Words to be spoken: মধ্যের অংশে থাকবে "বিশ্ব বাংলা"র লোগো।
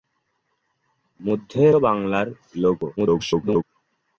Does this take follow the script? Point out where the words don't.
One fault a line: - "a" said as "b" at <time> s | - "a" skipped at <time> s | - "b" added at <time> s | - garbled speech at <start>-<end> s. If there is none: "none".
- "অংশে থাকবে বিশ্ব" skipped at 1.7 s
- garbled speech at 3.0-3.6 s